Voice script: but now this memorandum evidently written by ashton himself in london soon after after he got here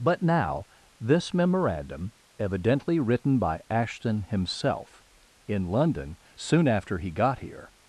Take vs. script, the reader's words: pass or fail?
fail